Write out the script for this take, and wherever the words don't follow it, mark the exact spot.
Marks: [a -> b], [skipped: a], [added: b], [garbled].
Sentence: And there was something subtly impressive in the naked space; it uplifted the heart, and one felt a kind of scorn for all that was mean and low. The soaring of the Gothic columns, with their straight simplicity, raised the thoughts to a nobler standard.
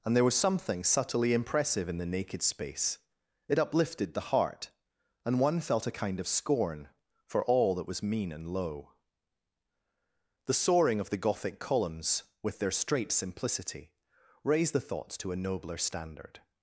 And there was something subtly impressive in the naked space; it uplifted the heart, and one felt a kind of scorn for all that was mean and low. The soaring of the Gothic columns, with their straight simplicity, raised the thoughts to a nobler standard.